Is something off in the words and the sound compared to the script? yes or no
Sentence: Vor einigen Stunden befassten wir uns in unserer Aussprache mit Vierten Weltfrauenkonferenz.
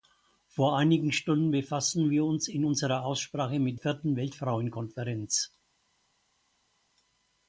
no